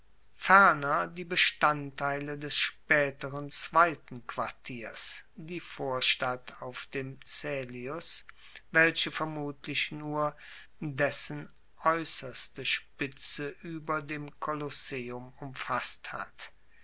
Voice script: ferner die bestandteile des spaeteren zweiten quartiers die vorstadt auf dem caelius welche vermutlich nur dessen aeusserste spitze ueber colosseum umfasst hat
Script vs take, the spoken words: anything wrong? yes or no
yes